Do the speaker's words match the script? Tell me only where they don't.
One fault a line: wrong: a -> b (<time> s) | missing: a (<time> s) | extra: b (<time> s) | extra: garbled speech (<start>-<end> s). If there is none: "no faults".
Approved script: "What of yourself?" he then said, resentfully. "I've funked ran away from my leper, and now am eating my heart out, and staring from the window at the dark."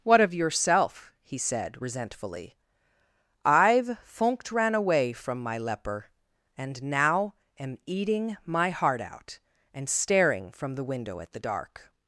missing: then (1.4 s)